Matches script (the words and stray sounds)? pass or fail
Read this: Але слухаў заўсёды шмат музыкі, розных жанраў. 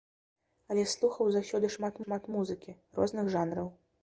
fail